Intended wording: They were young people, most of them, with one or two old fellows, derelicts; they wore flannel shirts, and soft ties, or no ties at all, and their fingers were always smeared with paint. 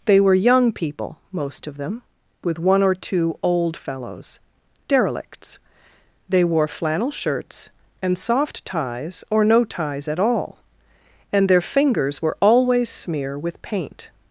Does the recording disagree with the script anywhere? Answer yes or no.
yes